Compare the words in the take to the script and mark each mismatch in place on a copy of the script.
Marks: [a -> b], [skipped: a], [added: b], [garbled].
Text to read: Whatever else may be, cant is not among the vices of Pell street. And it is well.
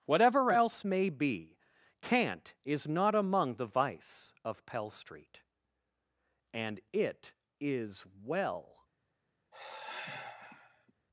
Whatever else may be, cant is not among the [vices -> vice] of Pell street. And it is well.